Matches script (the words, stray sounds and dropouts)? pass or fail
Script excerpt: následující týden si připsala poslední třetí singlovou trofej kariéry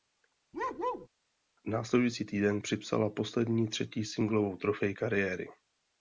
fail